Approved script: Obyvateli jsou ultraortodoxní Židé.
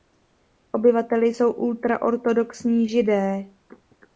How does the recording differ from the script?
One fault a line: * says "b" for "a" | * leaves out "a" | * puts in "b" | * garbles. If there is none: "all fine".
all fine